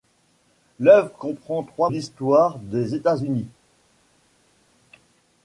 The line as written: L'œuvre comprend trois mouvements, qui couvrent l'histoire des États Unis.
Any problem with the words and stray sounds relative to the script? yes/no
yes